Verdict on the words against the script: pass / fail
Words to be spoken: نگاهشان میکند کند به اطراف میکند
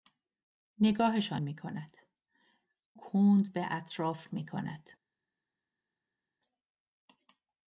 pass